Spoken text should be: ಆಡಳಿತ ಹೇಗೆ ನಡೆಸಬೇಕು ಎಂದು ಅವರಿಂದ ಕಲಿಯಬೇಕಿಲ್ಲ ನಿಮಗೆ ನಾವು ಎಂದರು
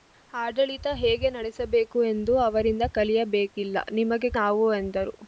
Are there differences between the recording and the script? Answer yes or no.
no